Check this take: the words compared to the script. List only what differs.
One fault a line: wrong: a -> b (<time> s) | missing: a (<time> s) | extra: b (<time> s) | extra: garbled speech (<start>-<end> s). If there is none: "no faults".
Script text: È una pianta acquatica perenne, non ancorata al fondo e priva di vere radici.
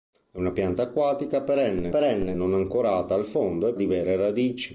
extra: perenne (1.9 s)
missing: priva (3.7 s)